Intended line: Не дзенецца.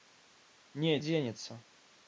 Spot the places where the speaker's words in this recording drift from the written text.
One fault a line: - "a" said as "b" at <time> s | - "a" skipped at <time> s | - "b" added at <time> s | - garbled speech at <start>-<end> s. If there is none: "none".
none